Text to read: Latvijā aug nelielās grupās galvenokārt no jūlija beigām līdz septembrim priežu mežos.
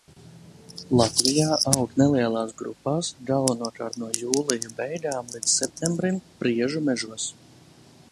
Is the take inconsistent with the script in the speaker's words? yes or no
no